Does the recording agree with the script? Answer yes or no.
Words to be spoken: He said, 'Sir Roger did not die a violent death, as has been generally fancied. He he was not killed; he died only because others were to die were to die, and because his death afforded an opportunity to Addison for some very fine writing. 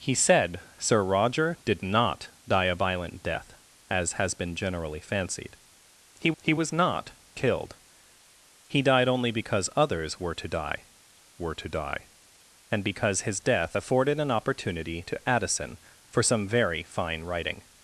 yes